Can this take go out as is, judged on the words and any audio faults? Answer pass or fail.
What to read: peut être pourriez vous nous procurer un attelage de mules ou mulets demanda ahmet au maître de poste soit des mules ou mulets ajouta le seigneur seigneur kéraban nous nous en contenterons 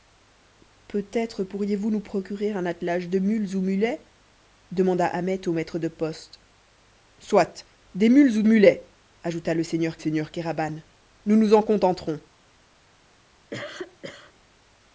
fail